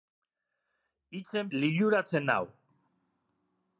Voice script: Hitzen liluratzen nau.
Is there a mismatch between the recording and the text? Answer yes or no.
no